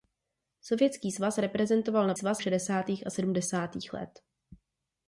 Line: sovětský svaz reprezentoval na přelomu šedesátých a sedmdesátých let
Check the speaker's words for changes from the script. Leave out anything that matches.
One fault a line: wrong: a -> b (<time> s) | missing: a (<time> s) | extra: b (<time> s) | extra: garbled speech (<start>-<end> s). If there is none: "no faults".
wrong: přelomu -> svaz (2.1 s)